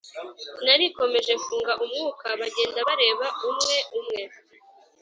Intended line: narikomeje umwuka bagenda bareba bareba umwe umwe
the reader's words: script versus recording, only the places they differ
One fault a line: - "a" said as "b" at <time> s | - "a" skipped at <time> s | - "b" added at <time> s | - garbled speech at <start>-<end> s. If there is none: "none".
- "mfunga" added at 1.4 s
- "bareba" skipped at 3.3 s